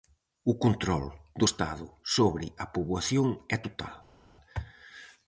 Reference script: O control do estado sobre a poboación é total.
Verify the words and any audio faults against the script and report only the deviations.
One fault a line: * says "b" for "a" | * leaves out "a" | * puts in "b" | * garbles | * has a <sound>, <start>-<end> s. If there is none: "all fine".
all fine